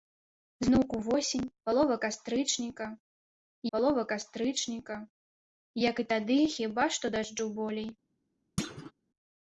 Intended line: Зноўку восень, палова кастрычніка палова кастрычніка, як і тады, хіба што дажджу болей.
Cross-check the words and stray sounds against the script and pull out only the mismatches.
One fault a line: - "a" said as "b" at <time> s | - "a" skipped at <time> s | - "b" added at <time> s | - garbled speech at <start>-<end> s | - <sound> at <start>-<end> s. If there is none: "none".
- thud at 8.6-8.9 s